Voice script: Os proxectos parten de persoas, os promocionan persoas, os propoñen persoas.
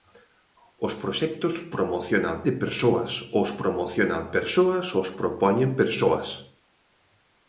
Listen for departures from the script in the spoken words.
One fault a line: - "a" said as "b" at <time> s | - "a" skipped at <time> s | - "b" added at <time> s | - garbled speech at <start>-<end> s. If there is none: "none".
- "parten" said as "promocionan" at 1.7 s